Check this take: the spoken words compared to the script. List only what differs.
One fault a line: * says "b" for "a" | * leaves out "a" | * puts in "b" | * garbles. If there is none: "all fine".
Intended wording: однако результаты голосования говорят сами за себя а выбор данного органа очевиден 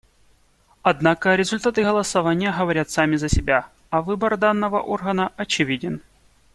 all fine